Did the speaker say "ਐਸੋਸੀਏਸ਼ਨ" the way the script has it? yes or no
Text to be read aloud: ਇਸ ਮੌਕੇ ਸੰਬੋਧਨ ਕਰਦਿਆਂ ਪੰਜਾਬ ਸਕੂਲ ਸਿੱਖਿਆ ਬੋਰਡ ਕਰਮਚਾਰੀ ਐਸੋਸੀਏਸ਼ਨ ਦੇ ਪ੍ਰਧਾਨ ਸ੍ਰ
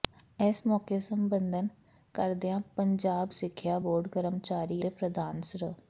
no